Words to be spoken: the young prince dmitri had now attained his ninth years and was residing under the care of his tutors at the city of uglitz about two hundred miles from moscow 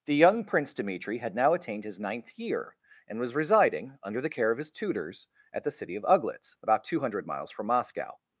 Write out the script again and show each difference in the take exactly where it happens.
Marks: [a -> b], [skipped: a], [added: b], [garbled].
the young prince dmitri had now attained his ninth [years -> year] and was residing under the care of his tutors at the city of uglitz about two hundred miles from moscow